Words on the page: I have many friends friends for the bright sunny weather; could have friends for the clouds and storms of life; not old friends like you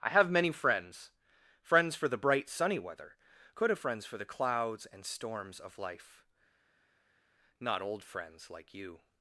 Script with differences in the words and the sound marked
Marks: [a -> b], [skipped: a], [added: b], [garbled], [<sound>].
I have many friends friends for the bright sunny weather; could have friends for the clouds and storms of life; not old friends like you